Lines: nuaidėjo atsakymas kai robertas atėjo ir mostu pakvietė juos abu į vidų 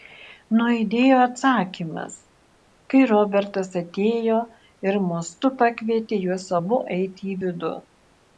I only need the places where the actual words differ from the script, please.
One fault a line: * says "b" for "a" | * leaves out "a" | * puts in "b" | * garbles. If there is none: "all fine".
* puts in "eiti"